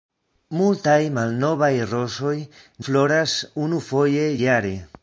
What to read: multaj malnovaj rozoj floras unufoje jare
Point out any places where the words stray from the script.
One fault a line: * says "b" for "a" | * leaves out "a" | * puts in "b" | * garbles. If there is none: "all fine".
all fine